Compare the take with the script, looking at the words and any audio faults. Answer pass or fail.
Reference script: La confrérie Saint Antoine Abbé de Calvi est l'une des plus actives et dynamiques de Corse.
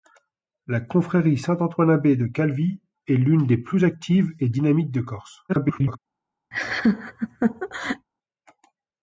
fail